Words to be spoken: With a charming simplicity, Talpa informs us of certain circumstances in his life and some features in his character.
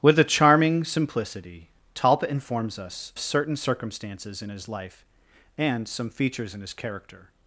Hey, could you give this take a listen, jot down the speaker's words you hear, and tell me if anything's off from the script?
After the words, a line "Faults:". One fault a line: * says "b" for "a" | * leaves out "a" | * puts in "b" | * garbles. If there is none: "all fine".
With a charming simplicity, Talpa informs us certain circumstances in his life and some features in his character.
Faults:
* leaves out "of"